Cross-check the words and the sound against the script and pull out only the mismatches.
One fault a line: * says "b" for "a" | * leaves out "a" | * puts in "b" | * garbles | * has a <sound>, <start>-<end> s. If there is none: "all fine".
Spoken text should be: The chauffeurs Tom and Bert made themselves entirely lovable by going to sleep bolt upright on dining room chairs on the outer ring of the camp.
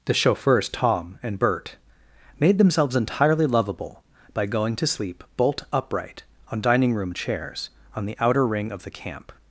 all fine